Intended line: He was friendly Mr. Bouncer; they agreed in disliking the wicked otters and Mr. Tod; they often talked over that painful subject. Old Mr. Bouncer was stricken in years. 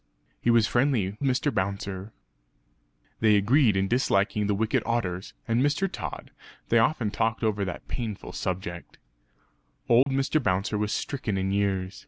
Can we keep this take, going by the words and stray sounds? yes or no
no